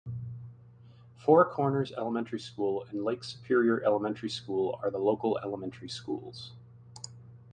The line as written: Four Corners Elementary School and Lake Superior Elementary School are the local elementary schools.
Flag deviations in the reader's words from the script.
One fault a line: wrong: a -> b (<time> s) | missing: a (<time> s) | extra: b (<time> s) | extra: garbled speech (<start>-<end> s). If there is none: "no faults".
no faults